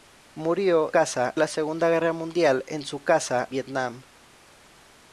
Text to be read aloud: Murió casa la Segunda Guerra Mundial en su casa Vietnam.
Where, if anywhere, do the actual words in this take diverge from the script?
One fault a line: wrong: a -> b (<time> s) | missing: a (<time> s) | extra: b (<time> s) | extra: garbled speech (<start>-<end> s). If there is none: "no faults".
no faults